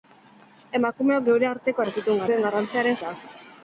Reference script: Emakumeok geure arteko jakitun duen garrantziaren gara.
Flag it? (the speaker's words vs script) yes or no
no